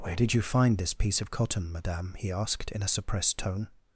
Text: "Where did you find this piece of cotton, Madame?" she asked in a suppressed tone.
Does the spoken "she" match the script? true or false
false